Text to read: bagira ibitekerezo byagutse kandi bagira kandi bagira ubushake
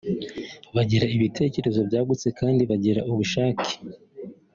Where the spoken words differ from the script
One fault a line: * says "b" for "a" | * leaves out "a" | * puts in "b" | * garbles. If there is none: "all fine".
* leaves out "kandi bagira"